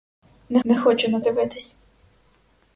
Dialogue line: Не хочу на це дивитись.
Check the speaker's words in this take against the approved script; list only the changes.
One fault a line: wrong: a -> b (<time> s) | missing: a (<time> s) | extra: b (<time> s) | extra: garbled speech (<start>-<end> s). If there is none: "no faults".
extra: не (0.6 s)
missing: це (1.2 s)